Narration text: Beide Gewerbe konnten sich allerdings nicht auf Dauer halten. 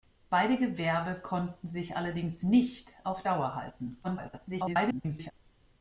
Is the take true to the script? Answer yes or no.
no